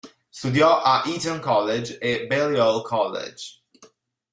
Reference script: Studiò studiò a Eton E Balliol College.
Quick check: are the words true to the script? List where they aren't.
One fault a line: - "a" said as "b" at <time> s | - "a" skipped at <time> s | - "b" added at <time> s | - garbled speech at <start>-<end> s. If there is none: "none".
- "studiò" skipped at 0.8 s
- "College" added at 1.4 s